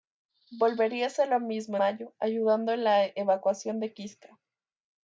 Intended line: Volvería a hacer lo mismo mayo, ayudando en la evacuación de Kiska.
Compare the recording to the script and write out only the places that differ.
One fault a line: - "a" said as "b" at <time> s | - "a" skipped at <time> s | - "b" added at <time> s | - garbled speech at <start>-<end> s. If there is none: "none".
none